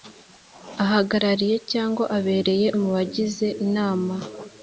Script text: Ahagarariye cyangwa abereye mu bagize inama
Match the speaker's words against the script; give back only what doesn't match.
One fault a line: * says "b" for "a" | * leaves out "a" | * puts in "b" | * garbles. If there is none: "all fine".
all fine